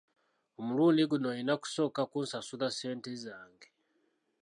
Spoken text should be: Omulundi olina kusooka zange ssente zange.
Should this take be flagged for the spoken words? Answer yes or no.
yes